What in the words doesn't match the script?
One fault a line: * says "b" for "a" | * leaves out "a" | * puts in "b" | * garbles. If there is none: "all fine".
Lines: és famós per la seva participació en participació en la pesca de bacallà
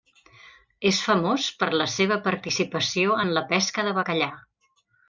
* leaves out "participació en"